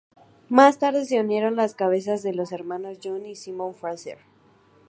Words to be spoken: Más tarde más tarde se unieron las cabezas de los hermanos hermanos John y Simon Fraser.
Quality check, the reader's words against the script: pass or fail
fail